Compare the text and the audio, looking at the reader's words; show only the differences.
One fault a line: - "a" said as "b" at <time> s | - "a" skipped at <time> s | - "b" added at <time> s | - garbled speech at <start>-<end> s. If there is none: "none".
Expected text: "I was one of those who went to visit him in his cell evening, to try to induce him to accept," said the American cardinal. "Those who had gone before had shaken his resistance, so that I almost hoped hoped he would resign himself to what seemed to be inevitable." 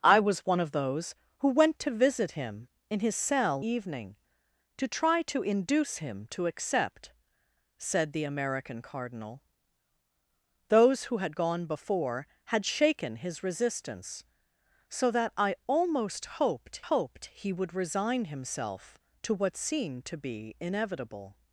none